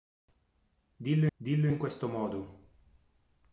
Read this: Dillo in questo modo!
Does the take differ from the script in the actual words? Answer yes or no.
yes